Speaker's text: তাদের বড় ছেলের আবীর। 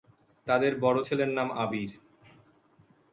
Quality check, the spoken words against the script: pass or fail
fail